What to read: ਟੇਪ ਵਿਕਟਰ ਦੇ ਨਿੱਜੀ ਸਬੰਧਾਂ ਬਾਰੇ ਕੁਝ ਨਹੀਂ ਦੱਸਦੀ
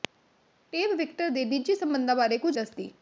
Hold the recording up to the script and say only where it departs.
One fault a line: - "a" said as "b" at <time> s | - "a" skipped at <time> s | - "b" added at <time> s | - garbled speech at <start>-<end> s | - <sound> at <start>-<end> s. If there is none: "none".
- "ਨਹੀਂ" skipped at 2.6 s